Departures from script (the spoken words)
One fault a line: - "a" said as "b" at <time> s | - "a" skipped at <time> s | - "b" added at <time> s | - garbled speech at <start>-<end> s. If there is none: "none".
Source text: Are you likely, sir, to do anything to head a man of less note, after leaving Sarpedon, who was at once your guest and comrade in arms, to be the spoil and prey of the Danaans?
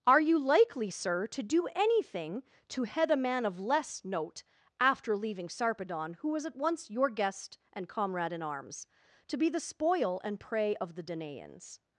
none